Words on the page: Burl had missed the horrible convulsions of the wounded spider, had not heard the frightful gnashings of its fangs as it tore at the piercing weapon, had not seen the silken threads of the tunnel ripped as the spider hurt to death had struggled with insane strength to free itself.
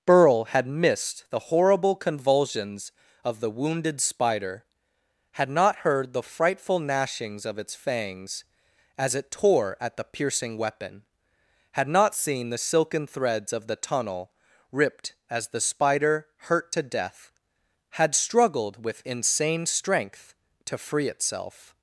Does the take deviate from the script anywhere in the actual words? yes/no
no